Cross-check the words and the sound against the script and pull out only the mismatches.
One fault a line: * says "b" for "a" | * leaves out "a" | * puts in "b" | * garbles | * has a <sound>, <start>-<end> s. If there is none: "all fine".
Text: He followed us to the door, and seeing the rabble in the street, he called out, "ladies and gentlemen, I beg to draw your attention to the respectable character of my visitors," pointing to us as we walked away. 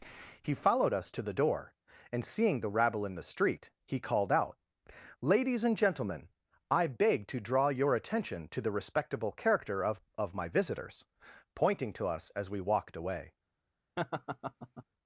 * puts in "of"
* has a laugh, 14.0-14.8 s